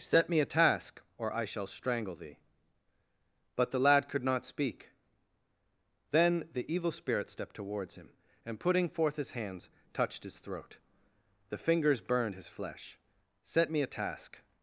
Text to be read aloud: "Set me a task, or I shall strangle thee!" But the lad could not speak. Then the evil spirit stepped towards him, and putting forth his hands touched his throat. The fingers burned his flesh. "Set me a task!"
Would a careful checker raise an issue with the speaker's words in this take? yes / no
no